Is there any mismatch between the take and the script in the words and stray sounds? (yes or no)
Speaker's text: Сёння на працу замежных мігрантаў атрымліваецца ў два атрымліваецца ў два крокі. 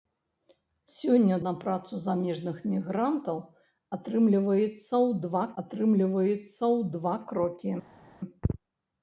no